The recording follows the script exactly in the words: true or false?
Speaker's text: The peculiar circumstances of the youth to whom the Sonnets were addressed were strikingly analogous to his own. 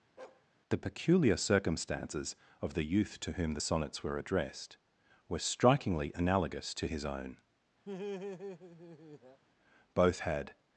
false